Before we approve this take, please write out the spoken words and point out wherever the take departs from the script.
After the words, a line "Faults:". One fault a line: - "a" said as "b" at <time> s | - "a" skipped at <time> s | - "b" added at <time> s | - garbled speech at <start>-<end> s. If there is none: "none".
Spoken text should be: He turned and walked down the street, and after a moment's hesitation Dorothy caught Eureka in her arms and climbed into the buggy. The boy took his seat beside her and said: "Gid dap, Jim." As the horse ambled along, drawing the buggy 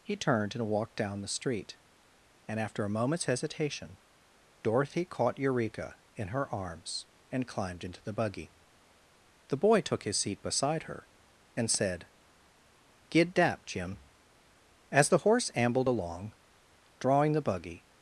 He turned and walked down the street, and after a moment's hesitation Dorothy caught Eureka in her arms and climbed into the buggy. The boy took his seat beside her and said: "Gid dap, Jim." As the horse ambled along, drawing the buggy
Faults:
none